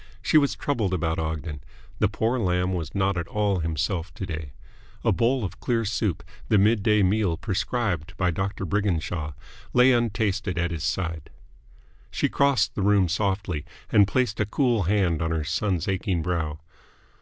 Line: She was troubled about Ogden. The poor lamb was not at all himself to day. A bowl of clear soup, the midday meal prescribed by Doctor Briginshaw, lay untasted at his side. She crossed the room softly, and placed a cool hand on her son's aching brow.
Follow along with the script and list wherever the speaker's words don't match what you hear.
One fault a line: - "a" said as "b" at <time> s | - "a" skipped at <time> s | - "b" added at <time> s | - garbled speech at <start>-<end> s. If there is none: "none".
none